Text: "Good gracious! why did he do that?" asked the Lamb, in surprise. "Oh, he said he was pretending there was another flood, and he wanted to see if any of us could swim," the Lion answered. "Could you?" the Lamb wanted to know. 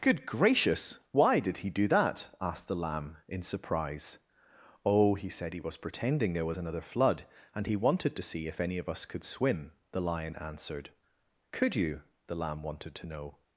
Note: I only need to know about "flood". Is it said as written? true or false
true